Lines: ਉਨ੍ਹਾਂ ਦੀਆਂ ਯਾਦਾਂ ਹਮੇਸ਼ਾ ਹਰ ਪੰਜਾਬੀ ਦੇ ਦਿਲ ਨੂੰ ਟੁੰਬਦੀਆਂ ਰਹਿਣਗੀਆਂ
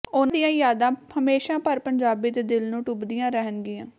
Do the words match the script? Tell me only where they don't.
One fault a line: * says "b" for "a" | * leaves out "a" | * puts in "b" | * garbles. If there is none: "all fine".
all fine